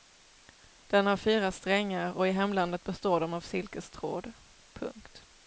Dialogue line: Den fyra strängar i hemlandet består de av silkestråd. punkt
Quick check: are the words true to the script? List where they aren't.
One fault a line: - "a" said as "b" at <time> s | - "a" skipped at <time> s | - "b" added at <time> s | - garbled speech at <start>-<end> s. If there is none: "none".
- "har" added at 1.1 s
- "och" added at 2.1 s